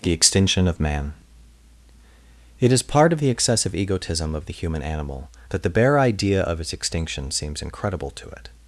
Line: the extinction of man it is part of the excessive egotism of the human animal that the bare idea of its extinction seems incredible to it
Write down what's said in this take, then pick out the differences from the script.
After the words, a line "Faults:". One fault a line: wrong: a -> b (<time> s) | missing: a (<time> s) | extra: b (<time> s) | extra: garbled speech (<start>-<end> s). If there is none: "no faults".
the extinction of man it is part of the excessive egotism of the human animal that the bare idea of its extinction seems incredible to it
Faults:
no faults